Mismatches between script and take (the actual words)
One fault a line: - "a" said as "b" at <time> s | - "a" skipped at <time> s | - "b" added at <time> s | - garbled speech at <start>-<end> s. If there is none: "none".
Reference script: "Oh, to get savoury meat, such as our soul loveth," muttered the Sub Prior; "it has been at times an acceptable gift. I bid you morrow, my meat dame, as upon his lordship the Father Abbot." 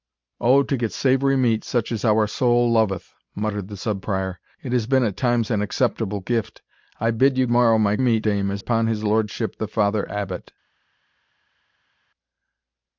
none